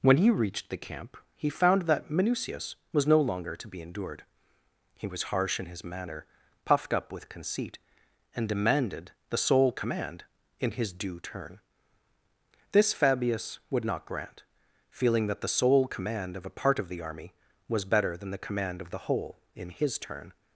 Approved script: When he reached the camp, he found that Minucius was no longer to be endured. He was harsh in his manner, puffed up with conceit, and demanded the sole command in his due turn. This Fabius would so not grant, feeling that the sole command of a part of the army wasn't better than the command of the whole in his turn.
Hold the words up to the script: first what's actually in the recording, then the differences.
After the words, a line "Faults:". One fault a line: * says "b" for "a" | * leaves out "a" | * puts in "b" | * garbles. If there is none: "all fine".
When he reached the camp, he found that Minucius was no longer to be endured. He was harsh in his manner, puffed up with conceit, and demanded the sole command in his due turn. This Fabius would not grant, feeling that the sole command of a part of the army was better than the command of the whole in his turn.
Faults:
* leaves out "so"
* says "was" for "wasn't"